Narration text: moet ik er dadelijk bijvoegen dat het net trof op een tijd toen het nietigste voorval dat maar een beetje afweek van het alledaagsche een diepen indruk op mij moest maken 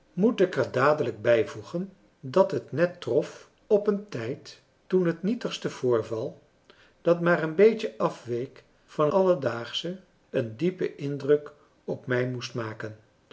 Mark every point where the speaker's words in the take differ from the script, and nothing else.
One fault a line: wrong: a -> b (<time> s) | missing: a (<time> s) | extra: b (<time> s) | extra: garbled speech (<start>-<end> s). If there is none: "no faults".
missing: het (9.1 s)